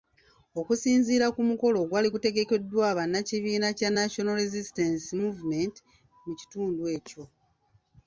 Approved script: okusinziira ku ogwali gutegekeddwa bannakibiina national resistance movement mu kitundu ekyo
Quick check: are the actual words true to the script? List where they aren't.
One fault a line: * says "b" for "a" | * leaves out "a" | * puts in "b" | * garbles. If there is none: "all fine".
* puts in "mukolo"
* puts in "kya"